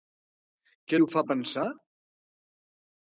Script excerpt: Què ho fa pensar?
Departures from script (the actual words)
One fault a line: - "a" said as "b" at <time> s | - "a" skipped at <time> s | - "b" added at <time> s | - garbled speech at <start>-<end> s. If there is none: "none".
none